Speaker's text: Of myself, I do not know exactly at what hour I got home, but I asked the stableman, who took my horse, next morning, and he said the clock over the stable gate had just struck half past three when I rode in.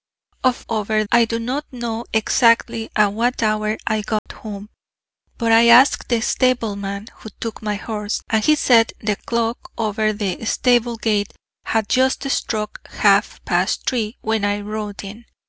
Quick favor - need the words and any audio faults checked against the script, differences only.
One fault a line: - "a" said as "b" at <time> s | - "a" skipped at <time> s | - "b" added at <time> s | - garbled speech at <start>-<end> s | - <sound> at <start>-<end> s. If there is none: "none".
- "myself" said as "over" at 0.7 s
- dropout at 4.2-4.3 s
- "next morning" skipped at 8.2 s